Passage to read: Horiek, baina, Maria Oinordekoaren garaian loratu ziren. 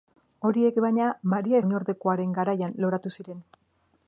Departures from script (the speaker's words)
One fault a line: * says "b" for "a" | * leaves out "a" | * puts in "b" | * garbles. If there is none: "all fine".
all fine